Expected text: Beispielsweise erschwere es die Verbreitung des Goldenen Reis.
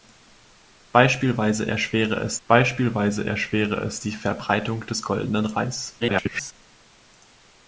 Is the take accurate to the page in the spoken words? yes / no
no